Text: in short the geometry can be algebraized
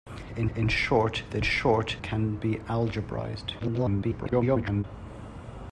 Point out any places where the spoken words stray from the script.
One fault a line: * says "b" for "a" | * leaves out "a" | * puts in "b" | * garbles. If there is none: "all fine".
* puts in "in"
* says "short" for "geometry"
* garbles